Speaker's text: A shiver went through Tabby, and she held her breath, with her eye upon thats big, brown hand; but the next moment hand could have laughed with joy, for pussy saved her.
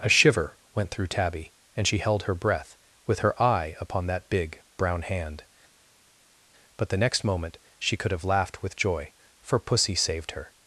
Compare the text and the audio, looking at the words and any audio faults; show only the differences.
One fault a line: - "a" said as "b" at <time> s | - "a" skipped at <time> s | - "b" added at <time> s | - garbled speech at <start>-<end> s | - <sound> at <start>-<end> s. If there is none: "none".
- "thats" said as "that" at 4.1 s
- "hand" said as "she" at 7.8 s